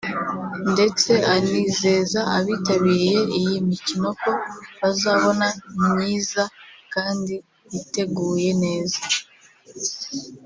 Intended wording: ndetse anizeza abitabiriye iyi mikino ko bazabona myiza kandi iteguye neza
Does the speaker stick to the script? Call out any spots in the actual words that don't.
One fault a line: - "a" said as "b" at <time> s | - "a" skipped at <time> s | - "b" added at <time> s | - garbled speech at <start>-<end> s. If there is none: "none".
none